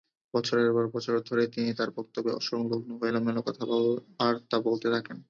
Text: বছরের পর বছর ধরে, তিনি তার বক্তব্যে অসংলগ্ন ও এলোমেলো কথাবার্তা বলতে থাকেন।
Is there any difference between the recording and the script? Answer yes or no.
no